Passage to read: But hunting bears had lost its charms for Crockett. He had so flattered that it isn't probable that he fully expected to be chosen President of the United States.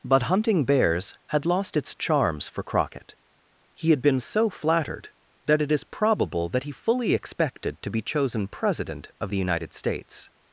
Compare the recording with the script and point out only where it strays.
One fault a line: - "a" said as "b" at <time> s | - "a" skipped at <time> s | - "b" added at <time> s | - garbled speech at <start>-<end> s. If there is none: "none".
- "been" added at 4.0 s
- "isn't" said as "is" at 5.7 s